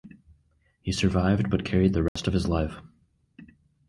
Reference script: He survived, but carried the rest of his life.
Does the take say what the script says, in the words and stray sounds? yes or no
no